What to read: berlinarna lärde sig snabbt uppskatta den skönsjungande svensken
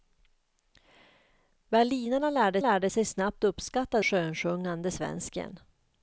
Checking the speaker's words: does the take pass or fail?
fail